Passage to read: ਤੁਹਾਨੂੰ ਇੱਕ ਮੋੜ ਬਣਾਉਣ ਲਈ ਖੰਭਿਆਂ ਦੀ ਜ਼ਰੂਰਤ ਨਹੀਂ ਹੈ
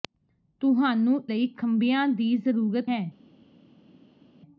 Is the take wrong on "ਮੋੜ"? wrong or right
wrong